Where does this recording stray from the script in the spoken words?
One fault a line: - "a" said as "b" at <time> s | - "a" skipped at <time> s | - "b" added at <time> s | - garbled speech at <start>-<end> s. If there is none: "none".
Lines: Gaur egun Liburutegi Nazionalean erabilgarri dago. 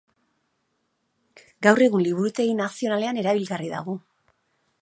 none